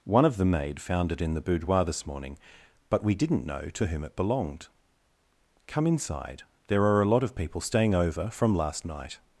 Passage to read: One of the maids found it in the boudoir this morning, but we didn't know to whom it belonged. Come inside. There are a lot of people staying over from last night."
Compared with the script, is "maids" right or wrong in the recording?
wrong